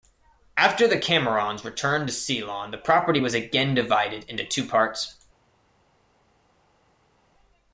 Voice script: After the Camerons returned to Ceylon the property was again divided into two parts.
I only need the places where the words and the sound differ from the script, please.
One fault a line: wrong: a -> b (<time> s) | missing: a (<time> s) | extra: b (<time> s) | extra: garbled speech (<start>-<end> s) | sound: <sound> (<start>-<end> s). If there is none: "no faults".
no faults